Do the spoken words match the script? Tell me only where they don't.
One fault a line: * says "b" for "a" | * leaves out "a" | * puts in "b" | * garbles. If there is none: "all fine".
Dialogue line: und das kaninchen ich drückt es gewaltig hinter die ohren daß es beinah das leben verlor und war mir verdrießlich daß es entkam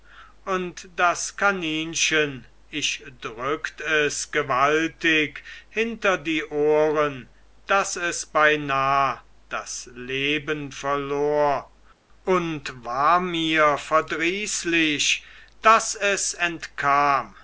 all fine